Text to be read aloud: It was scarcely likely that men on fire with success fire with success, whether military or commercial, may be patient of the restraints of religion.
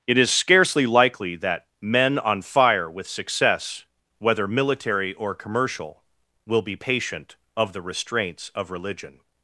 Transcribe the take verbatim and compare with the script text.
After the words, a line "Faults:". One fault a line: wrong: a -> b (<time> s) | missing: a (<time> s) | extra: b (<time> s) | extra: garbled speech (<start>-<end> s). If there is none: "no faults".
It is scarcely likely that men on fire with success, whether military or commercial, will be patient of the restraints of religion.
Faults:
wrong: was -> is (0.2 s)
missing: fire with success (3.9 s)
wrong: may -> will (6.5 s)